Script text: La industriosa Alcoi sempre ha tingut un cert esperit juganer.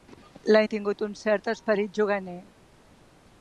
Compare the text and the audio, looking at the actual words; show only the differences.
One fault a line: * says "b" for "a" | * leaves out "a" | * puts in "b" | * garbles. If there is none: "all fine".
* leaves out "industriosa Alcoi sempre"